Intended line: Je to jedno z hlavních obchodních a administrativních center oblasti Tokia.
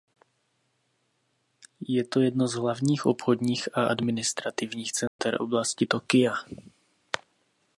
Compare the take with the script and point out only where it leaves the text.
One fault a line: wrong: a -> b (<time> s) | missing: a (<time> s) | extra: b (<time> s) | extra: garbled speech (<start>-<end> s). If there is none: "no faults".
no faults